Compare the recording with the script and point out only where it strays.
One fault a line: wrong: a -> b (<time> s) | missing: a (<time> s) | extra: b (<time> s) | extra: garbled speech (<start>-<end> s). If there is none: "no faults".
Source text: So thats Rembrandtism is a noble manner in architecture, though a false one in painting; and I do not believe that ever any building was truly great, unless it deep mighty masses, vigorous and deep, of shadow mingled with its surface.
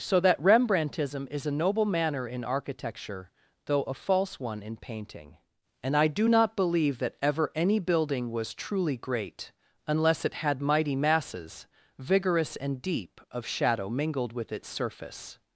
wrong: thats -> that (0.2 s)
wrong: deep -> had (10.4 s)